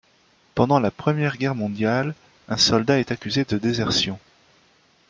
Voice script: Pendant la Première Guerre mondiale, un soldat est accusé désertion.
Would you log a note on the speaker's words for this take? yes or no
yes